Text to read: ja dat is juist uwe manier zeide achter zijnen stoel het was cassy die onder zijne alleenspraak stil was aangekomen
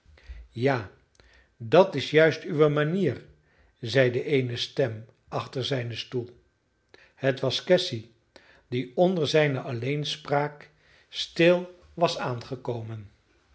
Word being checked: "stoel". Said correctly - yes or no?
yes